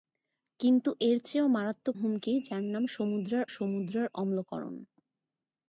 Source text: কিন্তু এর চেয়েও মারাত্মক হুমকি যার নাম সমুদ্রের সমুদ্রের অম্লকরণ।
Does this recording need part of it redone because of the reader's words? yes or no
no